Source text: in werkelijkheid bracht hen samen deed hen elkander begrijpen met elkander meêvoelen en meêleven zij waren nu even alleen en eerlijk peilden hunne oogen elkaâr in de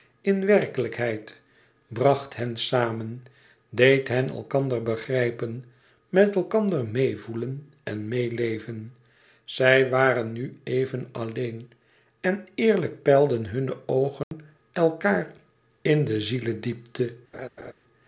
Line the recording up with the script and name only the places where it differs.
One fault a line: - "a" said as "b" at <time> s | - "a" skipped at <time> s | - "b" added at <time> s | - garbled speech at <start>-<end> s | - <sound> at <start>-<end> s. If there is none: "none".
- dropout at 14.2-14.3 s
- laugh at 17.3-17.7 s